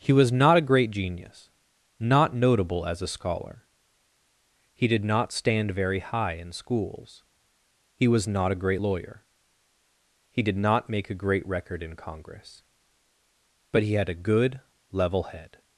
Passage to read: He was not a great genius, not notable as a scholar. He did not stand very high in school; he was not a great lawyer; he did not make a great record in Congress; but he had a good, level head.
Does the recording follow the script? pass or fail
fail